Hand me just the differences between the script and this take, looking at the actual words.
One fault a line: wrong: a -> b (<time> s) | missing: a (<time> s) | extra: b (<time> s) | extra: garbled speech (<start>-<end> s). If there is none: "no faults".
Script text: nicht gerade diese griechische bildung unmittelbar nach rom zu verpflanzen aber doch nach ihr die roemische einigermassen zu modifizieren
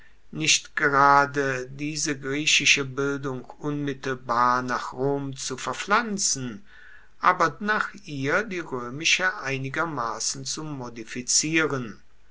missing: doch (7.5 s)